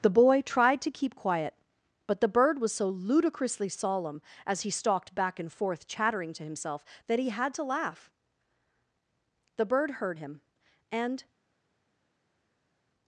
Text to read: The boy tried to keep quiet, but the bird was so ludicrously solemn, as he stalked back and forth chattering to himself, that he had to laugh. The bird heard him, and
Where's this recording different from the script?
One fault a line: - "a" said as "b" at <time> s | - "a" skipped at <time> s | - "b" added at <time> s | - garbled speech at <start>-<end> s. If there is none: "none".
none